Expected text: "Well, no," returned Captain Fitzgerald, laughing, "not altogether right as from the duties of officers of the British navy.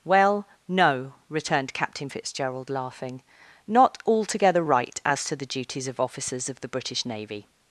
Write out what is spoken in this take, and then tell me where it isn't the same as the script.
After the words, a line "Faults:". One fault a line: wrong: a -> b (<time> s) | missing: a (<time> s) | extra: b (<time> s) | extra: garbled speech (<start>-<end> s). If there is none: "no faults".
"Well, no," returned Captain Fitzgerald, laughing, "not altogether right as to the duties of officers of the British navy.
Faults:
wrong: from -> to (5.2 s)